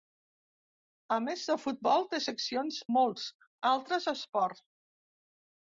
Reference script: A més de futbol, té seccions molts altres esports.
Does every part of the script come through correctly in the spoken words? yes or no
yes